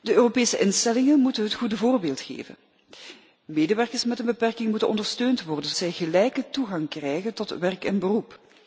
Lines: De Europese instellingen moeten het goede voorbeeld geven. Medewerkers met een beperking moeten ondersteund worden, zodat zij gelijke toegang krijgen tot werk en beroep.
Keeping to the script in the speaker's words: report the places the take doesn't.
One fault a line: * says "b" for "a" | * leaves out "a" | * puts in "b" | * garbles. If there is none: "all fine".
* leaves out "zodat"